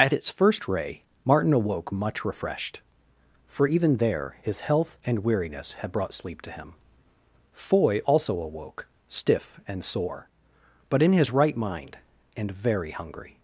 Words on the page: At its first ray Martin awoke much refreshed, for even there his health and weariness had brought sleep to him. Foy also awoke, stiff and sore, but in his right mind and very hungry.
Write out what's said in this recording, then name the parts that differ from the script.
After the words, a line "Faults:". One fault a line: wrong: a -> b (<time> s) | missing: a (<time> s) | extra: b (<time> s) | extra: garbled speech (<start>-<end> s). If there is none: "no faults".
At its first ray Martin awoke much refreshed, for even there his health and weariness had brought sleep to him. Foy also awoke, stiff and sore, but in his right mind and very hungry.
Faults:
no faults